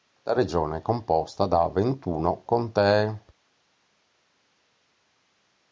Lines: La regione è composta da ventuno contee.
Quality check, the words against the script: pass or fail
pass